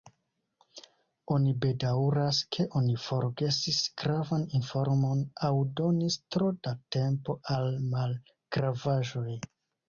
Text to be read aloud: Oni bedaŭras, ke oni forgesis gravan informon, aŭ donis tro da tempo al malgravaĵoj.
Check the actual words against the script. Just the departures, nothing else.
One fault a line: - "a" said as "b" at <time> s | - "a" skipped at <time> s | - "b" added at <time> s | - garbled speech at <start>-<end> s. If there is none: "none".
none